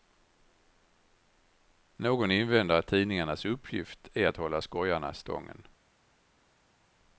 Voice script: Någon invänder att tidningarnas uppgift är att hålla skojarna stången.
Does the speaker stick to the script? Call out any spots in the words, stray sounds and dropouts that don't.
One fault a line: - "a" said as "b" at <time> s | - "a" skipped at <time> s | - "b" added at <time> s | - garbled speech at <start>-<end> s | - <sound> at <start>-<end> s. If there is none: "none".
none